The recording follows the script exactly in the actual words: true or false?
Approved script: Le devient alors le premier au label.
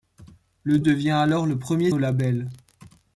true